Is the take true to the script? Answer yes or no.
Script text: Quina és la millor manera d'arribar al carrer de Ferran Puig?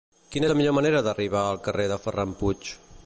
yes